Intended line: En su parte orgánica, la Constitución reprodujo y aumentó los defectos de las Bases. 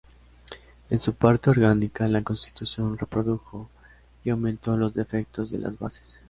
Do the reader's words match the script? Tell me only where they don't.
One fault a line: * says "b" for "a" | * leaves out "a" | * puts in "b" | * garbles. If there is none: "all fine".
all fine